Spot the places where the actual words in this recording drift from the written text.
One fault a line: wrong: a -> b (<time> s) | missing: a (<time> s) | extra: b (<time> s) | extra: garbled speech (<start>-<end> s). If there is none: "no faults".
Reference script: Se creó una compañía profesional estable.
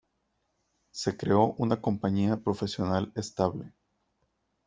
no faults